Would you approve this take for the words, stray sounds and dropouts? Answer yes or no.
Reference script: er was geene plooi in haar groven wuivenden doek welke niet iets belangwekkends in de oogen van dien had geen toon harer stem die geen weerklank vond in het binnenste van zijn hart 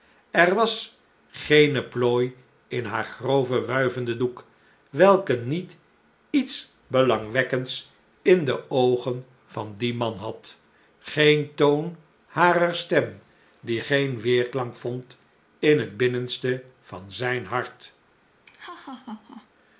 no